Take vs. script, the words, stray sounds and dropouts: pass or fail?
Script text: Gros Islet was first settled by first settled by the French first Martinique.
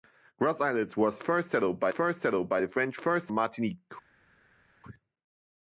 pass